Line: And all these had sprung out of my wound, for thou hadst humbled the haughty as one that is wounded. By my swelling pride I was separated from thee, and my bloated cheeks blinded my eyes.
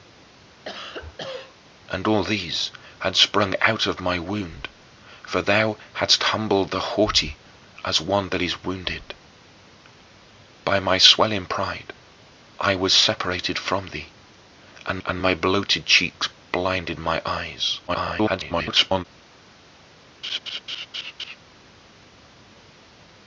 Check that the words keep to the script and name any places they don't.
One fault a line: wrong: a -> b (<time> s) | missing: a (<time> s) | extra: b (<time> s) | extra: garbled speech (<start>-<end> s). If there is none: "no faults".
extra: and (15.0 s)
extra: garbled speech (17.9-19.0 s)